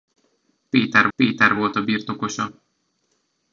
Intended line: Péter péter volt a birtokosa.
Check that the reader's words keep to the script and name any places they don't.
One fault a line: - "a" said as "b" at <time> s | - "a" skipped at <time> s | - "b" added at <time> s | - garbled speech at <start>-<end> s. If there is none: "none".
none